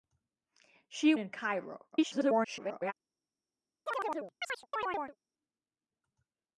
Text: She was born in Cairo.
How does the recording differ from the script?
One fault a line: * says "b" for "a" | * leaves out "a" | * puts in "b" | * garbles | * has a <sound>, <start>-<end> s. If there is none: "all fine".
* leaves out "was born"
* garbles
* has a chirp, 3.9-5.2 s